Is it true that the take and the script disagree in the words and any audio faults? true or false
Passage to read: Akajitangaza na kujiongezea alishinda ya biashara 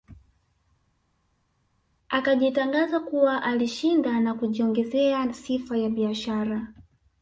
true